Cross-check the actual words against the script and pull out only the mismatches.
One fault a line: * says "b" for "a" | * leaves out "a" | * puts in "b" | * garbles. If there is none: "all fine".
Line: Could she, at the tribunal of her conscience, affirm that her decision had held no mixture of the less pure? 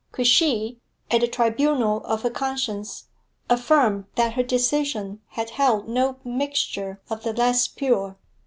all fine